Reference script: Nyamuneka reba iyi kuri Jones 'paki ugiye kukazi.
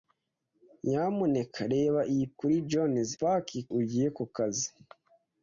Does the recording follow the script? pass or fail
pass